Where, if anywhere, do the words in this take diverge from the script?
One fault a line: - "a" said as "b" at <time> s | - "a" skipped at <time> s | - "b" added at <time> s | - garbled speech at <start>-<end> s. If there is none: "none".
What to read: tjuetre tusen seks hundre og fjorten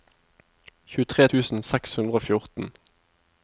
none